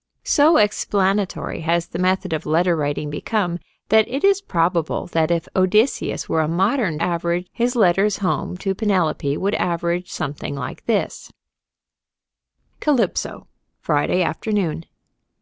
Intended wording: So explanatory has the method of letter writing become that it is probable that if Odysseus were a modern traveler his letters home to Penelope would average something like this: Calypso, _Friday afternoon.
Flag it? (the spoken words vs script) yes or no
yes